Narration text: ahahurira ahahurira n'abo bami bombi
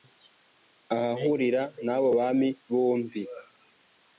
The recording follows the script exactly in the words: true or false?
false